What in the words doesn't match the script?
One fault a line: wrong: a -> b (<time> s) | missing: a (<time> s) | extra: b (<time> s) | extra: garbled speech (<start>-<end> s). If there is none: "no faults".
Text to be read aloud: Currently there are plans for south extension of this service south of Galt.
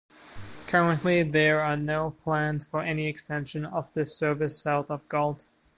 extra: no (1.8 s)
wrong: south -> any (2.8 s)